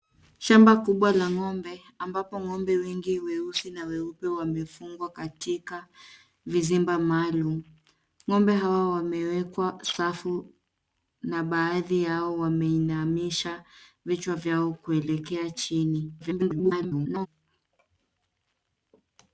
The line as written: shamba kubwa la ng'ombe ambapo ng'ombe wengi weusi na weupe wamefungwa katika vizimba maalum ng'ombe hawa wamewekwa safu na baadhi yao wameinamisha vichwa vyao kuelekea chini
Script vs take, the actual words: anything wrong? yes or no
yes